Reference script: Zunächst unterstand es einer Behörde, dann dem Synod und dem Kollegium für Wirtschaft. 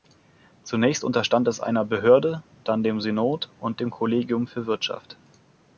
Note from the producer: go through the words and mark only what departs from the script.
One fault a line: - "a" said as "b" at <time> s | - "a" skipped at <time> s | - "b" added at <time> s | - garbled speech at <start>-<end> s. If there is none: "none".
none